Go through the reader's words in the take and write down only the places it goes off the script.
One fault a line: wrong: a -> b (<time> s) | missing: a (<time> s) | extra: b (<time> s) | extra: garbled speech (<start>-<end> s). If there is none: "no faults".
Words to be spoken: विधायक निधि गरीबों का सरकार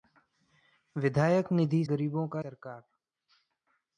no faults